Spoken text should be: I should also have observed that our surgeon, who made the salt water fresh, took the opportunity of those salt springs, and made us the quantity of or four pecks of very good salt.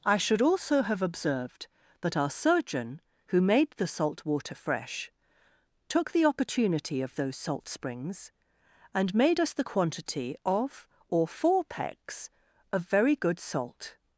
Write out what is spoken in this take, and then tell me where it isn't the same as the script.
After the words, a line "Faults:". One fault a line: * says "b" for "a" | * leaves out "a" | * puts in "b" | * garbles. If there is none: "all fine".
I should also have observed that our surgeon, who made the salt water fresh, took the opportunity of those salt springs, and made us the quantity of or four pecks of very good salt.
Faults:
all fine